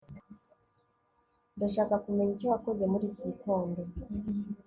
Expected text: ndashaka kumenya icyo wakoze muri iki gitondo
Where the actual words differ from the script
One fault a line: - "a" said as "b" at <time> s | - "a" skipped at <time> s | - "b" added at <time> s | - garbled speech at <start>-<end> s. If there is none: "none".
none